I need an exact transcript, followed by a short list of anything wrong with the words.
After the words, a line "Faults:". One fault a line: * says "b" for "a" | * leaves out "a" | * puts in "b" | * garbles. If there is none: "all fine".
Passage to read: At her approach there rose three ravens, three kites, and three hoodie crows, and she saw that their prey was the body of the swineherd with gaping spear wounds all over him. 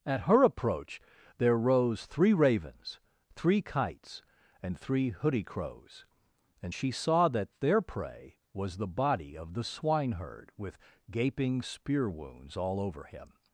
At her approach there rose three ravens, three kites, and three hoodie crows, and she saw that their prey was the body of the swineherd with gaping spear wounds all over him.
Faults:
all fine